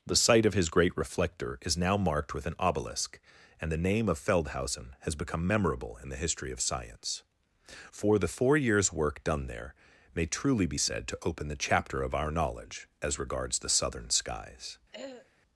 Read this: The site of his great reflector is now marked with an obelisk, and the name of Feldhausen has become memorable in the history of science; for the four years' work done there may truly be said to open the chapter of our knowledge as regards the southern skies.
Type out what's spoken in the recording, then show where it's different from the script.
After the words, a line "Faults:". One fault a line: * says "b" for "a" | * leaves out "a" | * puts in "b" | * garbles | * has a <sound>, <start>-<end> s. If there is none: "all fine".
The site of his great reflector is now marked with an obelisk, and the name of Feldhausen has become memorable in the history of science; for the four years' work done there may truly be said to open the chapter of our knowledge as regards the southern skies.
Faults:
* has a throat clearing, 14.9-15.3 s